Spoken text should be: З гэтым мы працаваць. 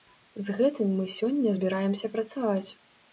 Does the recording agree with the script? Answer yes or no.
no